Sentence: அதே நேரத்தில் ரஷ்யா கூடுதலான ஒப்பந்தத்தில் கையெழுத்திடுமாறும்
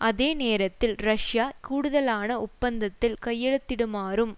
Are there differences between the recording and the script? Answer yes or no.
no